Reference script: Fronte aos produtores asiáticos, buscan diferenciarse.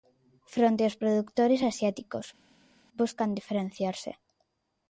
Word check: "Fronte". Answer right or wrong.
right